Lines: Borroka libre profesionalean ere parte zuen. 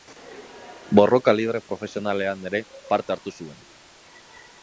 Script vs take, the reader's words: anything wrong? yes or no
yes